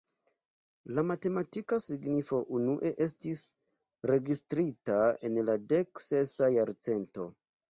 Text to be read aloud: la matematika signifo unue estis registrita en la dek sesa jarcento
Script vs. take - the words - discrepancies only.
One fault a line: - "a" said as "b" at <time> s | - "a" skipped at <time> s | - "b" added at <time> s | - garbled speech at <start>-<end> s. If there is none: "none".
none